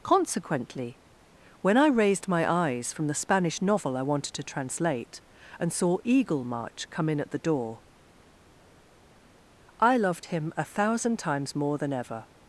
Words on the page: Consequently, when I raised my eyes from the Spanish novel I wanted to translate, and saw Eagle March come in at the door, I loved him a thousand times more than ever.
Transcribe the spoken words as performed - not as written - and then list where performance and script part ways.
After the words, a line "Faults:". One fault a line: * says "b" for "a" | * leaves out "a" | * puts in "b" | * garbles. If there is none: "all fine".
Consequently, when I raised my eyes from the Spanish novel I wanted to translate, and saw Eagle March come in at the door, I loved him a thousand times more than ever.
Faults:
all fine